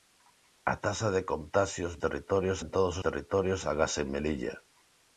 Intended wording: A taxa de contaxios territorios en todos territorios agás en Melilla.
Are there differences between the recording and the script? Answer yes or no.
no